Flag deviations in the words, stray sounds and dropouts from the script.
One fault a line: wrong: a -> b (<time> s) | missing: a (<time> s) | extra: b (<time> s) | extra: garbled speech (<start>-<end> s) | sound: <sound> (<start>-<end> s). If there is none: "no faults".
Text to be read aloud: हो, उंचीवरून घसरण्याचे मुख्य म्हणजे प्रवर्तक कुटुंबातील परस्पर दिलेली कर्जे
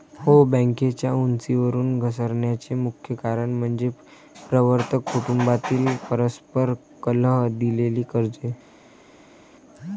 extra: बँकेच्या (0.5 s)
extra: कारण (3.1 s)
extra: कलह (7.0 s)